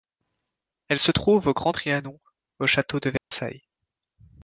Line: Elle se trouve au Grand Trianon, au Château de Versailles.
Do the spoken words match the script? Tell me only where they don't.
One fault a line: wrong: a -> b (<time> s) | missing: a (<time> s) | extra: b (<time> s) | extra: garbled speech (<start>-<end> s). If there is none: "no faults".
no faults